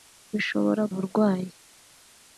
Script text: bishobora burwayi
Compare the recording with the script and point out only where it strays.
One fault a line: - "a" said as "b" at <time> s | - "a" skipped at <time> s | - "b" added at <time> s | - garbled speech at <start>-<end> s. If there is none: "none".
none